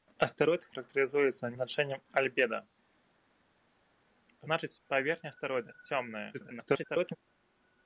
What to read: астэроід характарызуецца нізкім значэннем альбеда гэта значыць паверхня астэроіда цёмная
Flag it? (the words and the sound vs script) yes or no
yes